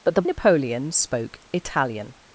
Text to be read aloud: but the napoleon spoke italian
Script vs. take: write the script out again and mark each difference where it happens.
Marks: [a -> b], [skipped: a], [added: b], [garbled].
but the napoleon spoke italian